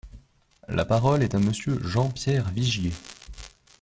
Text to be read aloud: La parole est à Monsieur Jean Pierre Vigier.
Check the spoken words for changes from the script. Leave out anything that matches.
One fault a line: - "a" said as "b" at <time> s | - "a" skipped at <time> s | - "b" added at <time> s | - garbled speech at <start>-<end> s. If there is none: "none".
none